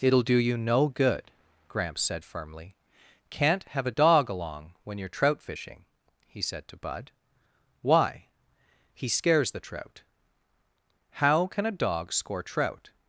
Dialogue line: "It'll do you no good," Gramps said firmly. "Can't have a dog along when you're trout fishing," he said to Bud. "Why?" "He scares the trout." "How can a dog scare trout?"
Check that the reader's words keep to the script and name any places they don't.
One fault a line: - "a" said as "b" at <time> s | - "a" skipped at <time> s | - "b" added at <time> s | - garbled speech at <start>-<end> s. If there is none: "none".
- "scare" said as "score" at 12.1 s